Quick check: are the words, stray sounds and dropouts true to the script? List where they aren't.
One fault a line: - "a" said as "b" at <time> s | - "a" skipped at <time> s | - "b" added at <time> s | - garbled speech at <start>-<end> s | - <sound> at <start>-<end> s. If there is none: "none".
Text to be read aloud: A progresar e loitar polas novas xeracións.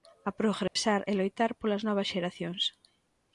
- dropout at 0.7-0.8 s